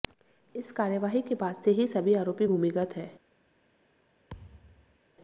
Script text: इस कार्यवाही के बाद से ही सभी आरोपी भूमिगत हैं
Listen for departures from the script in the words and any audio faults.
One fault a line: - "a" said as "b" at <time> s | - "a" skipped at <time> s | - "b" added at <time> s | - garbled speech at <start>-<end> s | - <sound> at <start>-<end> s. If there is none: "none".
- thud at 4.3-5.0 s